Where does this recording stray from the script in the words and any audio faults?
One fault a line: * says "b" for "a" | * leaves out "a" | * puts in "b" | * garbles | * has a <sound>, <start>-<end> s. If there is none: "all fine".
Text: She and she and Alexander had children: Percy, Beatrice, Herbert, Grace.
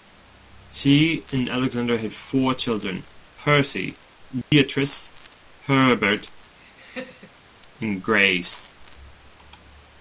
* leaves out "she and"
* puts in "four"
* has a dropout, 4.4-4.5 s
* has a laugh, 6.6-7.5 s
* puts in "and"